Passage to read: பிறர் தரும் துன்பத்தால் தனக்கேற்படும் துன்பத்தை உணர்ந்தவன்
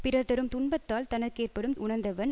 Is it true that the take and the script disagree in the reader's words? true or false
true